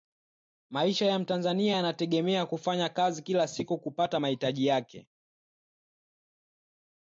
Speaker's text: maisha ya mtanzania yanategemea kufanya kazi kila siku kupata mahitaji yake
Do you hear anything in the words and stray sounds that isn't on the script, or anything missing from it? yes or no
no